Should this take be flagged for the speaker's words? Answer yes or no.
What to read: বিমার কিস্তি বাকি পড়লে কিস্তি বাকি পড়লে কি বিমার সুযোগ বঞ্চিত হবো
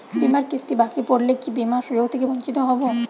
yes